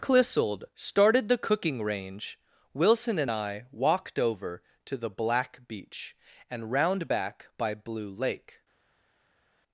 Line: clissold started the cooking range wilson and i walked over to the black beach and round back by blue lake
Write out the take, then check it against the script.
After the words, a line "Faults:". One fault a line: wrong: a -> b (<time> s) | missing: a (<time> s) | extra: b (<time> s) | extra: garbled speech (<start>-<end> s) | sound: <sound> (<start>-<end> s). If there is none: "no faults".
clissold started the cooking range wilson and i walked over to the black beach and round back by blue lake
Faults:
no faults